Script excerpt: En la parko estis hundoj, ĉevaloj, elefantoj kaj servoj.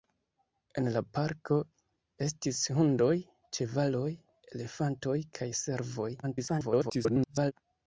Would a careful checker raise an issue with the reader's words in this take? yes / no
yes